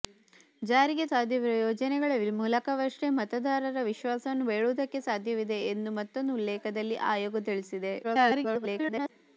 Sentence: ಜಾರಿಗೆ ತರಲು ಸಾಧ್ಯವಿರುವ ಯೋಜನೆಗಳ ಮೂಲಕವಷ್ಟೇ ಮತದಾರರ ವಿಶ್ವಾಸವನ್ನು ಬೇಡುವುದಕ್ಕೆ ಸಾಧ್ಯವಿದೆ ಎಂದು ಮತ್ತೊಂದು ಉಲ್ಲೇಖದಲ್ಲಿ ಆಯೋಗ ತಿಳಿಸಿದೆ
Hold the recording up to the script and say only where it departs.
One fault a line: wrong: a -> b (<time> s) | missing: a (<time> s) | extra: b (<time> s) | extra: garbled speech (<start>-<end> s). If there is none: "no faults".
missing: ತರಲು (1.1 s)
extra: garbled speech (8.0-9.1 s)